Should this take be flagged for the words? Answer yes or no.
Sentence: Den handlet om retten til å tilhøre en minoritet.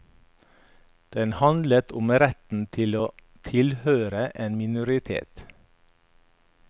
no